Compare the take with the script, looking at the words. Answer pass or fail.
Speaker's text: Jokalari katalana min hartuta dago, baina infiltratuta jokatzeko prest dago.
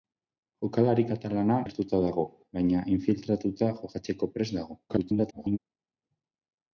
fail